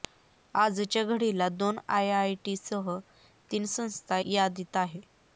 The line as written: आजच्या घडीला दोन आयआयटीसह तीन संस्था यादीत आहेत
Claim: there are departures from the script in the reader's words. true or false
false